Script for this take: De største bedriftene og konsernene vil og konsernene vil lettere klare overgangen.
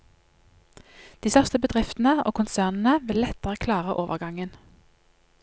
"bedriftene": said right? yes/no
yes